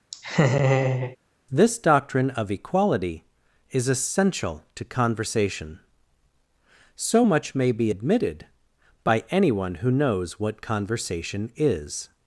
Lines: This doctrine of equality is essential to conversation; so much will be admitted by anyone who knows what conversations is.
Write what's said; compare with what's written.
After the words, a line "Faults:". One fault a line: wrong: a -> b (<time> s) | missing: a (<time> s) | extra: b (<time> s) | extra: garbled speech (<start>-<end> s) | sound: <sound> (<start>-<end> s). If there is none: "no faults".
This doctrine of equality is essential to conversation; so much may be admitted by anyone who knows what conversation is.
Faults:
sound: laugh (0.1-1.2 s)
wrong: will -> may (7.6 s)
wrong: conversations -> conversation (10.6 s)